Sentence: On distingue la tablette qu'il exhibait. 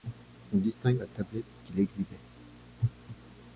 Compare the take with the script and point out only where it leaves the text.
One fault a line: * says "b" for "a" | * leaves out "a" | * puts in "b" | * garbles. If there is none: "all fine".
all fine